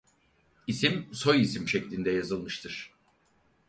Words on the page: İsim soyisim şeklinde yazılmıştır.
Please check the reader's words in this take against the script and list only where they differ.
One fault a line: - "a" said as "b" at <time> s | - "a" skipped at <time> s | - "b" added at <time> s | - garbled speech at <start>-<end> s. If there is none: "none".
none